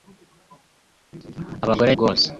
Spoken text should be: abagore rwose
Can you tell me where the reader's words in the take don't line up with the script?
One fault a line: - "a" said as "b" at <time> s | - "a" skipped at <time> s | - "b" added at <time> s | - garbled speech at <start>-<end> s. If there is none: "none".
none